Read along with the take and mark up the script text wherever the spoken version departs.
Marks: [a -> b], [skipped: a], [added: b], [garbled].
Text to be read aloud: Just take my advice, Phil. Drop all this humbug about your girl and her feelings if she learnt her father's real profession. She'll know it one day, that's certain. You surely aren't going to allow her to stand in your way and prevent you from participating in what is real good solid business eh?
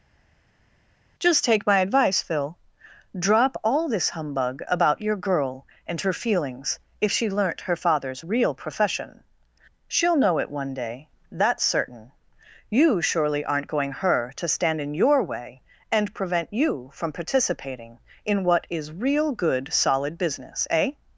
Just take my advice, Phil. Drop all this humbug about your girl and her feelings if she learnt her father's real profession. She'll know it one day, that's certain. You surely aren't going [skipped: to allow] her to stand in your way and prevent you from participating in what is real good solid business eh?